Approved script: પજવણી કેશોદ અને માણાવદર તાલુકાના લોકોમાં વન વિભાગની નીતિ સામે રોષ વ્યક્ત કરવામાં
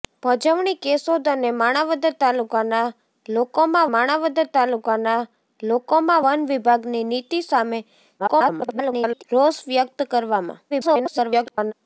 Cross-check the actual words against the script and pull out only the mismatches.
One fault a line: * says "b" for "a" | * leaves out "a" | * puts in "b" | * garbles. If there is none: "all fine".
* puts in "માણાવદર તાલુકાના લોકોમાં"
* garbles
* garbles